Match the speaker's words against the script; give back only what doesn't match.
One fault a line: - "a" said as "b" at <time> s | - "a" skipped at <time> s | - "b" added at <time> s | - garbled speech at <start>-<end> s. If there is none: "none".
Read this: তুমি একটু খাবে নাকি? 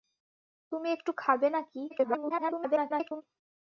- garbled speech at 1.9-3.2 s